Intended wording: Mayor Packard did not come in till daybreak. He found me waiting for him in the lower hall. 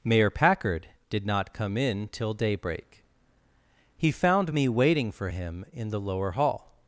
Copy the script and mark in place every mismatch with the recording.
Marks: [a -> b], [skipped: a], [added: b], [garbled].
Mayor Packard did not come in till daybreak. He found me waiting for him in the lower hall.